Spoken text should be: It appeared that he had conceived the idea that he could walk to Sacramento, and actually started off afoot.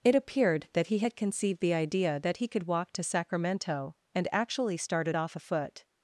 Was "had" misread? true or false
false